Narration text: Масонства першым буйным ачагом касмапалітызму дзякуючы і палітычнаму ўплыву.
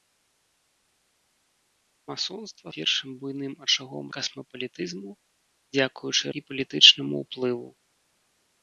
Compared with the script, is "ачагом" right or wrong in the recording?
right